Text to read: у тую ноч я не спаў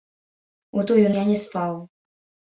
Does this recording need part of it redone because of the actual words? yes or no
yes